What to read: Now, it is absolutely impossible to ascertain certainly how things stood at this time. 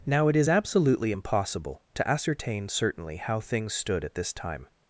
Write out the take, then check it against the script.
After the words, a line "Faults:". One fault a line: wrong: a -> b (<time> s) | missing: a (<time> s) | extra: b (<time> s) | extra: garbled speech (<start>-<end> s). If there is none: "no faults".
Now, it is absolutely impossible to ascertain certainly how things stood at this time.
Faults:
no faults